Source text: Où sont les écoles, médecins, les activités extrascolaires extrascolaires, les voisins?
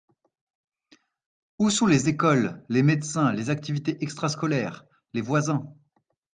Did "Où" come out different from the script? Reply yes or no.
no